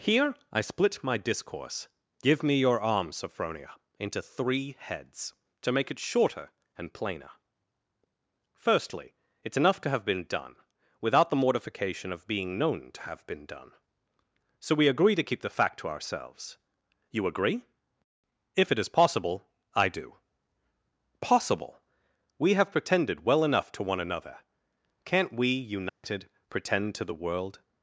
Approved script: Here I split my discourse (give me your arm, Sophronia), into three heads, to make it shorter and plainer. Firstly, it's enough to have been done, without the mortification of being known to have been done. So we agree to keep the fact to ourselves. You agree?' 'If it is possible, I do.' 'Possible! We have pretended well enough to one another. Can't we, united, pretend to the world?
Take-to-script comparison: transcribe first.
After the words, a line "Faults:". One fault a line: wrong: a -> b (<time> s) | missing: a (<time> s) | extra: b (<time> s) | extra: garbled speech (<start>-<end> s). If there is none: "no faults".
Here I split my discourse (give me your arm, Sophronia), into three heads, to make it shorter and plainer. Firstly, it's enough to have been done, without the mortification of being known to have been done. So we agree to keep the fact to ourselves. You agree?' 'If it is possible, I do.' 'Possible! We have pretended well enough to one another. Can't we, united, pretend to the world?
Faults:
no faults